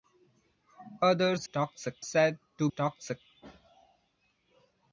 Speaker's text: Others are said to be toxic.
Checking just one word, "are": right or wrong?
wrong